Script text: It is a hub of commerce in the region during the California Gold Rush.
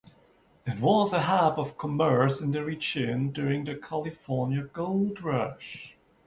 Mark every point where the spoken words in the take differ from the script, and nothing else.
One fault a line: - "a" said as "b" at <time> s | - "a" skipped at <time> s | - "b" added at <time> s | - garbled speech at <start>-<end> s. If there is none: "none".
- "is" said as "was" at 0.8 s